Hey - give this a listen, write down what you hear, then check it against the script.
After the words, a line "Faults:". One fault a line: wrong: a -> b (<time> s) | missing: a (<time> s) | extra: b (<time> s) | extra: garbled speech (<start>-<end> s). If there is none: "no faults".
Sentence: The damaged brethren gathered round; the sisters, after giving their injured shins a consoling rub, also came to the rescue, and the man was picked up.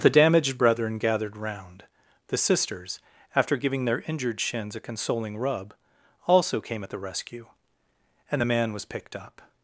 The damaged brethren gathered round; the sisters, after giving their injured shins a consoling rub, also came at the rescue, and the man was picked up.
Faults:
wrong: to -> at (6.8 s)